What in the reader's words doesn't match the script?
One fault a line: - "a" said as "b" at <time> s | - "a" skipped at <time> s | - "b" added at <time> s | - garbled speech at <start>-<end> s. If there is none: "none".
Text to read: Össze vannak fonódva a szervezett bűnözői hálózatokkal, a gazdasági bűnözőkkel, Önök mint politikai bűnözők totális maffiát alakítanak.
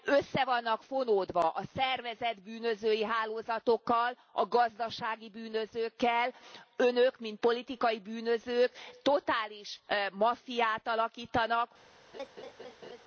none